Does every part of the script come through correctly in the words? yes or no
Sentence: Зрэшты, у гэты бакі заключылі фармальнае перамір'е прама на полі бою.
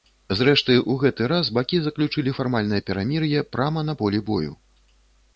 no